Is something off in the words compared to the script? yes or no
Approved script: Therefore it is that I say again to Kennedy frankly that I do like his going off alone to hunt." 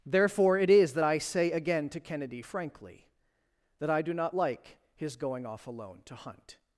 yes